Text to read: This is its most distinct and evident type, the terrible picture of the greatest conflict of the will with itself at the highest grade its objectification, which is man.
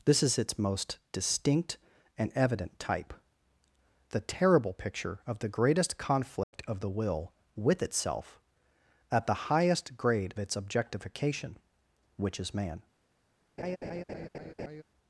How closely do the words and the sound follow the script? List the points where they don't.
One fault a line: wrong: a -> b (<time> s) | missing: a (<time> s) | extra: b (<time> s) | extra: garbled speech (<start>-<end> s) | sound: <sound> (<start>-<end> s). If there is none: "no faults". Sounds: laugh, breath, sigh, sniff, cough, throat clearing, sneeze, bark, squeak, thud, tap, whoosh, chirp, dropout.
sound: dropout (6.4-6.5 s)
sound: laugh (13.6-14.8 s)